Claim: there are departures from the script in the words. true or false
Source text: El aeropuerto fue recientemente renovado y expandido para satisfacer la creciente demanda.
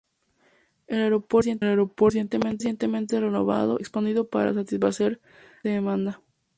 true